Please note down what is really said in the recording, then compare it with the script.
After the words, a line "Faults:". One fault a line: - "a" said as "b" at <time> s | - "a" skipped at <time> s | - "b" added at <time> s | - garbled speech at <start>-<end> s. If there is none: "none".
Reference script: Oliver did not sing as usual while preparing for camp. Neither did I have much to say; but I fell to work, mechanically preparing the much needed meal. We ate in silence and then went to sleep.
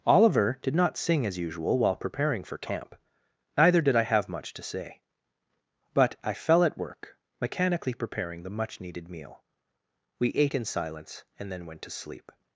Oliver did not sing as usual while preparing for camp. Neither did I have much to say; but I fell at work, mechanically preparing the much needed meal. We ate in silence and then went to sleep.
Faults:
- "to" said as "at" at 6.6 s